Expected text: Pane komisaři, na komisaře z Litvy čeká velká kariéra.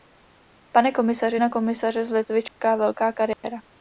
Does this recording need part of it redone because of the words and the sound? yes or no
yes